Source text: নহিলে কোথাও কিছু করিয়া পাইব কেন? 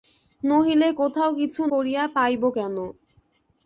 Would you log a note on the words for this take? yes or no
no